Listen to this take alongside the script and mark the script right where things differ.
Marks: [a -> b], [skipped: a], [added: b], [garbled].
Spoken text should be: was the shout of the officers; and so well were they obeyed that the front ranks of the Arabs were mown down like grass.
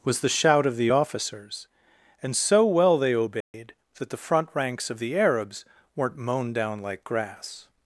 was the shout of the officers; and so well [skipped: were] they obeyed that the front ranks of the Arabs [were -> weren't] mown down like grass.